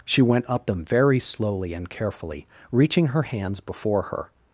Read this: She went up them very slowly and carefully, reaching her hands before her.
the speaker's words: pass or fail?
pass